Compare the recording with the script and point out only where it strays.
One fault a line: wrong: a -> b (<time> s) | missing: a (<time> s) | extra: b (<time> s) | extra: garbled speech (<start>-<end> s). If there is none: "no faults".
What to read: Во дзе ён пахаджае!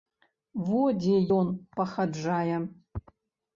no faults